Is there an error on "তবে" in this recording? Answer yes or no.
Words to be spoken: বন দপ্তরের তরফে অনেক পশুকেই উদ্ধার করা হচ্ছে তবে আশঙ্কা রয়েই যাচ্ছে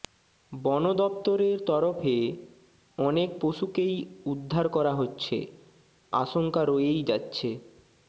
yes